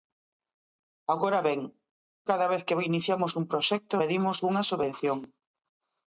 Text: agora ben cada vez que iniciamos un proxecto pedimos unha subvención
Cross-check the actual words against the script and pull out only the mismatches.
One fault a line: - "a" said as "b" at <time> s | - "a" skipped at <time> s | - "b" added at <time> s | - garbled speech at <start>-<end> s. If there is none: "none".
none